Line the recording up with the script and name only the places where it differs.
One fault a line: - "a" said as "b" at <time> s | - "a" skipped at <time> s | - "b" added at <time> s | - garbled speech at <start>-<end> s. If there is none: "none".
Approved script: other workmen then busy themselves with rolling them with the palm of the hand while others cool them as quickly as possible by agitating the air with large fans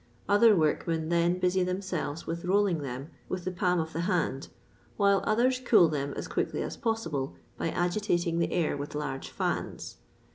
none